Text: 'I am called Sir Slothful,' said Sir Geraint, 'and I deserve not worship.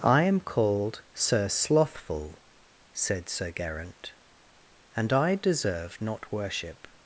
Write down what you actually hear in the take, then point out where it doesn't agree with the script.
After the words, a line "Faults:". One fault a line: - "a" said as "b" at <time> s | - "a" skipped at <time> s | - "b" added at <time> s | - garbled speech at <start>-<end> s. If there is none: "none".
'I am called Sir Slothful,' said Sir Geraint, 'and I deserve not worship.
Faults:
none